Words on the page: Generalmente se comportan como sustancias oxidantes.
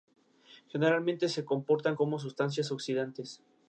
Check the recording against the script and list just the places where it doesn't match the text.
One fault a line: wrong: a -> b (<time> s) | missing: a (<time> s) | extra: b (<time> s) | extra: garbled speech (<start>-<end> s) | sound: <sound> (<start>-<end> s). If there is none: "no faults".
no faults